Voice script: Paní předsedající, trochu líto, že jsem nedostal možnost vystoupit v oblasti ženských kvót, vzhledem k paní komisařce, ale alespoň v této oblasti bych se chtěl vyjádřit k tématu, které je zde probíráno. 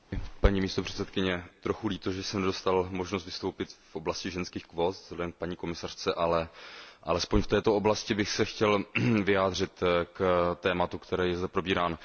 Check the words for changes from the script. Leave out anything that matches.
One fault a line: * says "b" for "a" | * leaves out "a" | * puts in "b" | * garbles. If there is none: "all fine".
all fine